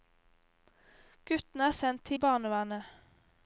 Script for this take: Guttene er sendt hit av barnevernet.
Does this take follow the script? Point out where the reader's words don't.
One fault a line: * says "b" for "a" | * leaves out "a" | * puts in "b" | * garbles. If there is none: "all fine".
* leaves out "hit"